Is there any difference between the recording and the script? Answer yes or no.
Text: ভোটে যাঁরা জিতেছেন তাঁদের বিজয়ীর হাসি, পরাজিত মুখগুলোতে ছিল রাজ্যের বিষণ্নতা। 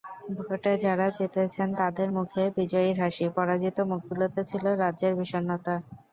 yes